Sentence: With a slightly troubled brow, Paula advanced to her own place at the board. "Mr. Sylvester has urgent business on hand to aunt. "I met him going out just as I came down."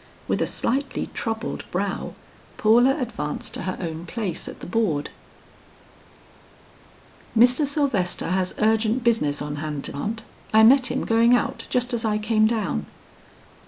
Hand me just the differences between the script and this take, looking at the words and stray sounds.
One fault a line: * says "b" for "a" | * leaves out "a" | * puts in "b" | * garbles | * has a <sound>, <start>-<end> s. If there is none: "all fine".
all fine